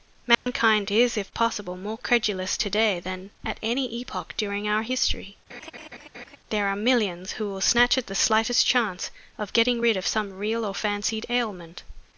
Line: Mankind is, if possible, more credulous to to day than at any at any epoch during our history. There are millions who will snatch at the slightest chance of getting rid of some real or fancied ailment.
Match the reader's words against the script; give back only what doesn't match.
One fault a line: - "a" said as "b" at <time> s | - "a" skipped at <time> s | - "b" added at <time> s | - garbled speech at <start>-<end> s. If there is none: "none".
- "to" skipped at 2.7 s
- "at any" skipped at 3.9 s